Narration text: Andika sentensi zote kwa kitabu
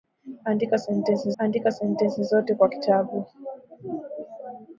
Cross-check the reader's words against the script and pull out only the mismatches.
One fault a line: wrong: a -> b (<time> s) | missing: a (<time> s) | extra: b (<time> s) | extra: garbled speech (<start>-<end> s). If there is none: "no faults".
extra: andika sentensi (1.4 s)